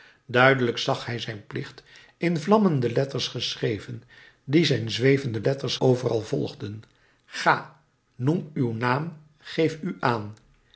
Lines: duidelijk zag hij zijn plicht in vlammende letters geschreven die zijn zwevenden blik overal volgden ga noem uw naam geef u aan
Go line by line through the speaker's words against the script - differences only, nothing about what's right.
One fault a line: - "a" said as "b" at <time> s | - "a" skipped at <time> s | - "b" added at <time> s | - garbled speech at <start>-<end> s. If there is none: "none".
- "blik" said as "letters" at 5.4 s